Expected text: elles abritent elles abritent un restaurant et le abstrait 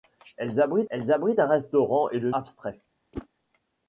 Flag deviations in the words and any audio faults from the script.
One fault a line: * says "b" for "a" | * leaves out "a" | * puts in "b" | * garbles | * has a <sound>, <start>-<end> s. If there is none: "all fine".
* has a whoosh, 3.1-3.3 s